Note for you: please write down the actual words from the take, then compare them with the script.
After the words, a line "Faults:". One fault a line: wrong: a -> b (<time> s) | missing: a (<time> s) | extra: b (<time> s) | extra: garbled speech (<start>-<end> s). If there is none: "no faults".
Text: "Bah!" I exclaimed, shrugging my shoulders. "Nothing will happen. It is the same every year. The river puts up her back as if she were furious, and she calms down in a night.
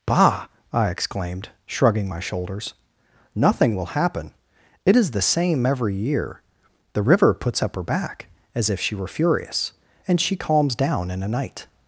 "Bah!" I exclaimed, shrugging my shoulders. "Nothing will happen. It is the same every year. The river puts up her back as if she were furious, and she calms down in a night.
Faults:
no faults